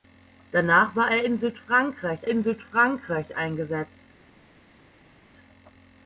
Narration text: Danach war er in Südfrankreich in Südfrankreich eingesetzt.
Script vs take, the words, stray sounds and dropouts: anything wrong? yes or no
no